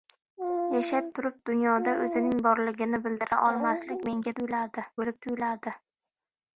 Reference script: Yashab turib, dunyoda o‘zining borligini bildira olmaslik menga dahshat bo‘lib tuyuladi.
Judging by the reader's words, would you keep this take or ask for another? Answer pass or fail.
fail